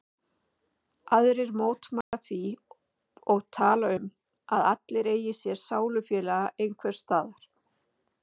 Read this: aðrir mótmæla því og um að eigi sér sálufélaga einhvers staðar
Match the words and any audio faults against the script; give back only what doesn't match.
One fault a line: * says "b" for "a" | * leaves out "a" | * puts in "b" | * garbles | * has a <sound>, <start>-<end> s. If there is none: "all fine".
* has a dropout, 2.0-2.1 s
* puts in "tala"
* puts in "allir"